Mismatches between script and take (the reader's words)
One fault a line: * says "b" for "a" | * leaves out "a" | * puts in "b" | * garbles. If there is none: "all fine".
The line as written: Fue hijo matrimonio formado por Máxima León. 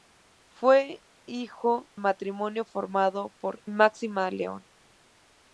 all fine